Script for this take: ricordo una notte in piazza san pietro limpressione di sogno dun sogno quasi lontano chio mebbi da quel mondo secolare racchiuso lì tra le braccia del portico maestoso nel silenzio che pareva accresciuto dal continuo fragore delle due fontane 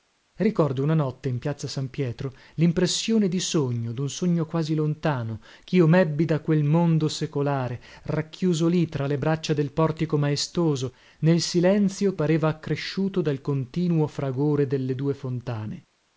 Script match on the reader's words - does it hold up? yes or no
no